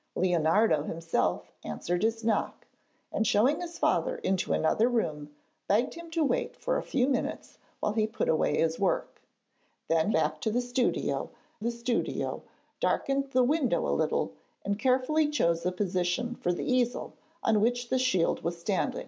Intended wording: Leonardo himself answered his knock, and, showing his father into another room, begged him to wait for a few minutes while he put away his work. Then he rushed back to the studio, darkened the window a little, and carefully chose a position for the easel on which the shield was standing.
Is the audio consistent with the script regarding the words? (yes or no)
no